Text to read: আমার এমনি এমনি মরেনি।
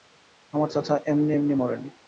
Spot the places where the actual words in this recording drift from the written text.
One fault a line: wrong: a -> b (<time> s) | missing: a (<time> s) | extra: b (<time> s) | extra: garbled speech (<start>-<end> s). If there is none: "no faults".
extra: চাচা (0.7 s)